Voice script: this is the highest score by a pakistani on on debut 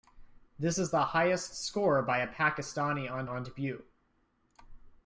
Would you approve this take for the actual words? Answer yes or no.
yes